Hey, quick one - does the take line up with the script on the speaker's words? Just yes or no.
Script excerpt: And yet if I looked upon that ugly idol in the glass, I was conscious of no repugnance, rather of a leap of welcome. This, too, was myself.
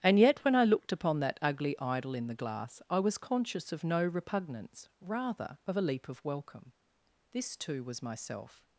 no